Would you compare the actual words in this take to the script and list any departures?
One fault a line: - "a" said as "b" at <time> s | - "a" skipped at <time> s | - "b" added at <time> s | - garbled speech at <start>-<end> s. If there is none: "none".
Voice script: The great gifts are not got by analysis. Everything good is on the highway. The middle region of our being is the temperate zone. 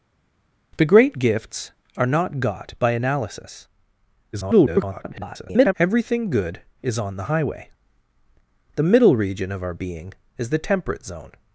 - garbled speech at 4.3-5.7 s